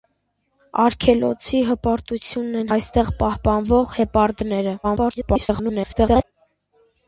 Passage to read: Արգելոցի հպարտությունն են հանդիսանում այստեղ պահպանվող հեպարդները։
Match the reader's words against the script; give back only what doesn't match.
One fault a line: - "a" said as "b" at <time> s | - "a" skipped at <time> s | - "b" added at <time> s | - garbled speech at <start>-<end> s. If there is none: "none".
- "հանդիսանում" skipped at 2.7 s
- garbled speech at 4.8-6.2 s